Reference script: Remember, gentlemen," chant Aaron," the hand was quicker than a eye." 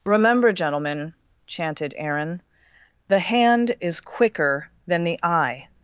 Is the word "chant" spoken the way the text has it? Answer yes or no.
no